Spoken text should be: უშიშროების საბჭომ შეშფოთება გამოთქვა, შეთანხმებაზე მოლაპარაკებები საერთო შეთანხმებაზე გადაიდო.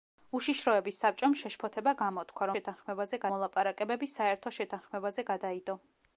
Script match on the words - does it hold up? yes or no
yes